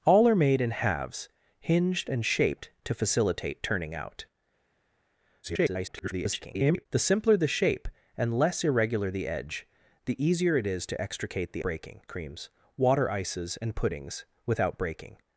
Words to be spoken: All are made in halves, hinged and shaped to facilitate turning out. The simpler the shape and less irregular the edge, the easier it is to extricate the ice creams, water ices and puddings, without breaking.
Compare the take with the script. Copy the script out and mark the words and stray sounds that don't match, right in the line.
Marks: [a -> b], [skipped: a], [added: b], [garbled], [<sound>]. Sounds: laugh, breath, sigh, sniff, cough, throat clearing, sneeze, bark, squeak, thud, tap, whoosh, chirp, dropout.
All are made in halves, hinged and shaped to facilitate turning out. [garbled] The simpler the shape and less irregular the edge, the easier it is to extricate the [ice -> breaking] creams, water ices and puddings, without breaking.